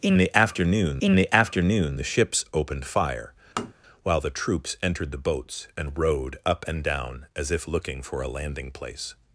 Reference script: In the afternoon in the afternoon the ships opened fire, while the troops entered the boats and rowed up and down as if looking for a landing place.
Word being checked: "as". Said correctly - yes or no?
yes